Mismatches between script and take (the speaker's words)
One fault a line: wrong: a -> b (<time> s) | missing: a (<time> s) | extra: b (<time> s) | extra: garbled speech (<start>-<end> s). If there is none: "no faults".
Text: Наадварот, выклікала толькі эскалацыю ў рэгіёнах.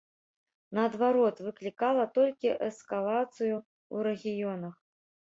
no faults